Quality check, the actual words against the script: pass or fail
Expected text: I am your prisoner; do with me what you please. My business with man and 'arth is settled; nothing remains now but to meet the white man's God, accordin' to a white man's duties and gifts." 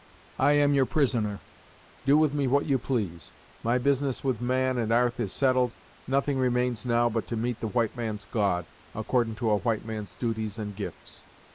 pass